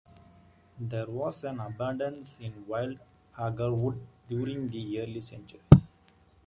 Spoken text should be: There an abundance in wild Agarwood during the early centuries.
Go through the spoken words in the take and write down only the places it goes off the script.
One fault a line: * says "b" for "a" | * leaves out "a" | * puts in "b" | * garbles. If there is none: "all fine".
* puts in "was"